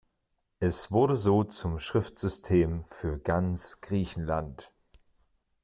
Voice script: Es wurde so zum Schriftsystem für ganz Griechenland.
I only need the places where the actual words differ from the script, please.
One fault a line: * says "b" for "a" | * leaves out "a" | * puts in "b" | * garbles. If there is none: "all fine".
all fine